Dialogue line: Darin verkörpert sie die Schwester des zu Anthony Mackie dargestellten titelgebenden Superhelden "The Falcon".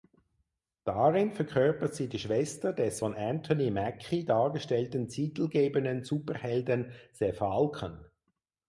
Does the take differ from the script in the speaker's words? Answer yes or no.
yes